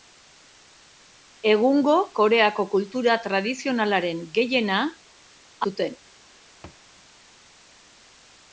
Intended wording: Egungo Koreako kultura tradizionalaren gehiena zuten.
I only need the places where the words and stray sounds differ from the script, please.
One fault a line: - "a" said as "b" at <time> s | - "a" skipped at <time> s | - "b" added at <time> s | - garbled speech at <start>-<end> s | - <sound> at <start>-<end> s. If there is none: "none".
- thud at 6.6-6.8 s